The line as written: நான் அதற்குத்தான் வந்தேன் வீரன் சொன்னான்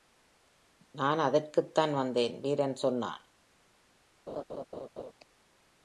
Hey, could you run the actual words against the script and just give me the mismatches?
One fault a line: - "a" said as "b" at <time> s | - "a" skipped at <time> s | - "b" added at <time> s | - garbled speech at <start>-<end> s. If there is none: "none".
none